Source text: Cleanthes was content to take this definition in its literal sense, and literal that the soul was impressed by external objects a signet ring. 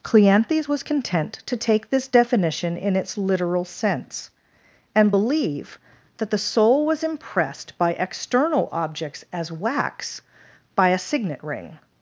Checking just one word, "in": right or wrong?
right